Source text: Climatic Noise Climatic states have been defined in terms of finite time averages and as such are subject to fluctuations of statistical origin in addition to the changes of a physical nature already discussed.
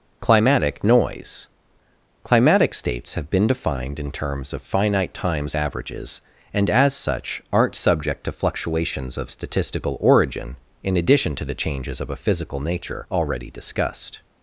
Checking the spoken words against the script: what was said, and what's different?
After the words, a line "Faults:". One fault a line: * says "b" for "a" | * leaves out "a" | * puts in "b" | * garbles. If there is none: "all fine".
Climatic Noise Climatic states have been defined in terms of finite times averages and as such aren't subject to fluctuations of statistical origin in addition to the changes of a physical nature already discussed.
Faults:
* says "times" for "time"
* says "aren't" for "are"